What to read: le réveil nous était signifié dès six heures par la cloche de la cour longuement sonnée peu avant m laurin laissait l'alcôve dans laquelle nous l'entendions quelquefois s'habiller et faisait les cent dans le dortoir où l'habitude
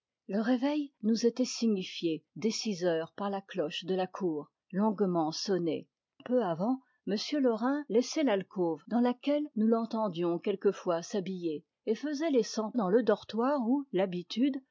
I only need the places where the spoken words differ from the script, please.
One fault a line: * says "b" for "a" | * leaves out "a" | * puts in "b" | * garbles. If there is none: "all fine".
all fine